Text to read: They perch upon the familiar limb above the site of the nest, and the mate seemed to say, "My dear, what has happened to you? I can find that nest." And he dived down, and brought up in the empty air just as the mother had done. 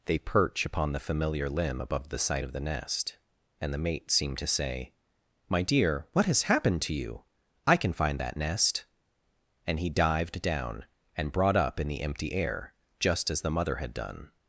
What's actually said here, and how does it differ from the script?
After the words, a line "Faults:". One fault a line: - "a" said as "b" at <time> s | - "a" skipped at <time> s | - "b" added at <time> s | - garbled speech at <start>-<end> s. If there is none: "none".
They perch upon the familiar limb above the site of the nest, and the mate seemed to say, "My dear, what has happened to you? I can find that nest." And he dived down, and brought up in the empty air just as the mother had done.
Faults:
none